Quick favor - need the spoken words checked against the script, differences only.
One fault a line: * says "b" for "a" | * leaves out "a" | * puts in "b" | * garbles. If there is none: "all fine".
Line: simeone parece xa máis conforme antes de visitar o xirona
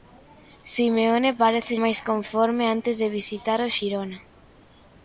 * leaves out "xa"